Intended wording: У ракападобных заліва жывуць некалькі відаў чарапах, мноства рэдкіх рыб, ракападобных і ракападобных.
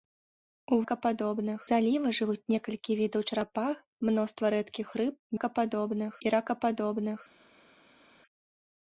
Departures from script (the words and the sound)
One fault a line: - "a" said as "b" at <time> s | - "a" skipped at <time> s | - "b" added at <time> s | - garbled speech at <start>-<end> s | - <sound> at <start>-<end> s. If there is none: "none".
none